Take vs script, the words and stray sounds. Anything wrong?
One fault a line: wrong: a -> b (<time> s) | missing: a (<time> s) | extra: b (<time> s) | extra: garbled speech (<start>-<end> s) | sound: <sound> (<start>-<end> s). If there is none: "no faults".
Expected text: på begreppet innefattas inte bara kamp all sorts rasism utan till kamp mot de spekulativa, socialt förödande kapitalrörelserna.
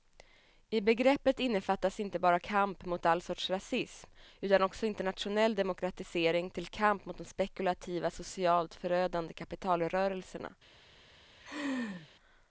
wrong: på -> I (0.7 s)
extra: mot (2.8 s)
extra: också internationell demokratisering (4.6 s)
sound: laugh (11.4-12.1 s)